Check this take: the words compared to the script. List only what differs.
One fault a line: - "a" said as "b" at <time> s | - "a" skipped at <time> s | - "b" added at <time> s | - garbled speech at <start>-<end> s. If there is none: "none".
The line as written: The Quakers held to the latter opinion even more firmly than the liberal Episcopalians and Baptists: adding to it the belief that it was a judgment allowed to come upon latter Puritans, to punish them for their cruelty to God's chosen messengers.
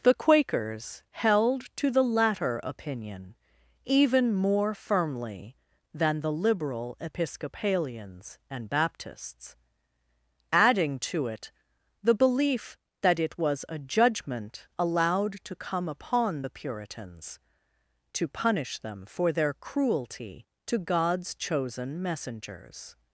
- "latter" said as "the" at 16.4 s